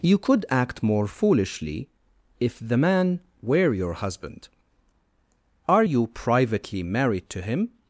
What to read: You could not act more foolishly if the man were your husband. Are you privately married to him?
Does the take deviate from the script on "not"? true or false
true